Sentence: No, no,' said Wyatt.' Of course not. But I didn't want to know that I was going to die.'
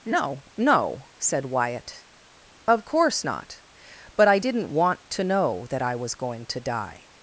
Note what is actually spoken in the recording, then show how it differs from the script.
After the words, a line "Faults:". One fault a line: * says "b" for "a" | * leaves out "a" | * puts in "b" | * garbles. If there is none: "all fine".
No, no,' said Wyatt.' Of course not. But I didn't want to know that I was going to die.'
Faults:
all fine